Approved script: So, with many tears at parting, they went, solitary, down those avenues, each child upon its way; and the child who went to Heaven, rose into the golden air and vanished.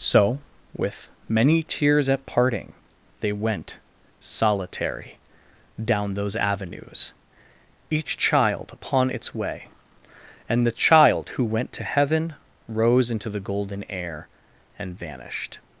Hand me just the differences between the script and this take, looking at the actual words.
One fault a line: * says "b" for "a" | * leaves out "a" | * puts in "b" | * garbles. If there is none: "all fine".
all fine